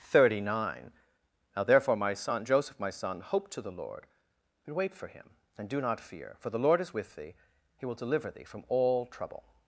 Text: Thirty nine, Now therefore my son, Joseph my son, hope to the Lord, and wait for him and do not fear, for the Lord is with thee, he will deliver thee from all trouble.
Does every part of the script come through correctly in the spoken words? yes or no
yes